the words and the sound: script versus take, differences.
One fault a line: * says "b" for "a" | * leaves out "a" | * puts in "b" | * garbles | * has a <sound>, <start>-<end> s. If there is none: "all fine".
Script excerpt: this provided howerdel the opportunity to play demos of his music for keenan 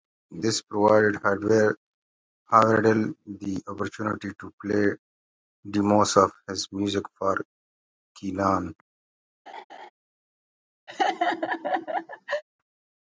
* has a laugh, 9.5-9.9 s
* has a laugh, 10.9-12.4 s